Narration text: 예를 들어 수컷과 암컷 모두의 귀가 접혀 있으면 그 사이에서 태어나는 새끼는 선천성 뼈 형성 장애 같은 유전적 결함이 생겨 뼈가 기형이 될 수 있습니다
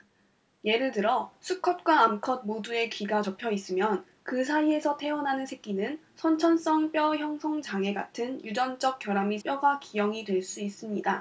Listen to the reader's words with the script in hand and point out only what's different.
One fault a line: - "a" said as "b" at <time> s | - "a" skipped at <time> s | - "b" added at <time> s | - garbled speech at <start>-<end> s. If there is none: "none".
- "생겨" skipped at 9.4 s